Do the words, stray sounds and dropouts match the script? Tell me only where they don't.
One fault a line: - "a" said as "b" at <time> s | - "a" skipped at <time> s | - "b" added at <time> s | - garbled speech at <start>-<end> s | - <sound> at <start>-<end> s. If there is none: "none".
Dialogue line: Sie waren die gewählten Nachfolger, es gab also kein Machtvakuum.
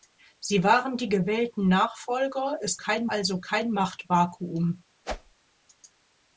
- "gab" said as "kein" at 2.8 s
- whoosh at 5.0-5.4 s